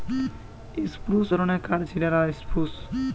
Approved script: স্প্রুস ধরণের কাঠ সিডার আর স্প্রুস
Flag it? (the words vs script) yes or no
no